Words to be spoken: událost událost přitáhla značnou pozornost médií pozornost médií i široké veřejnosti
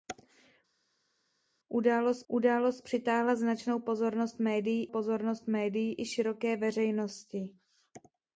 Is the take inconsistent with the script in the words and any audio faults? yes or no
no